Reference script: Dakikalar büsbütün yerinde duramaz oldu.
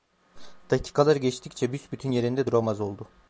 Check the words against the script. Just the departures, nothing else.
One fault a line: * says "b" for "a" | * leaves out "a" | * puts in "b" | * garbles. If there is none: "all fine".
* puts in "geçtikçe"